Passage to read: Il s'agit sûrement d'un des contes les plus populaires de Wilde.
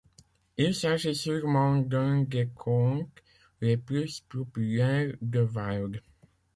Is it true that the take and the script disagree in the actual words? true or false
false